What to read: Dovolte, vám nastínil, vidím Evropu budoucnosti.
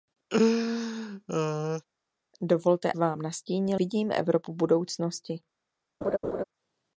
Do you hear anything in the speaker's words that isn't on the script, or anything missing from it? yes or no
no